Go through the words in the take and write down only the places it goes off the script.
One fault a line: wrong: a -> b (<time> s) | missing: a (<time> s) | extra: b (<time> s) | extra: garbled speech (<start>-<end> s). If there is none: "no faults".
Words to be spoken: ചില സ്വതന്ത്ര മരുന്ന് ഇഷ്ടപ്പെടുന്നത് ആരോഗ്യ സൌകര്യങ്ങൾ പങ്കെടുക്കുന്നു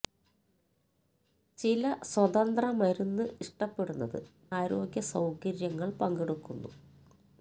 no faults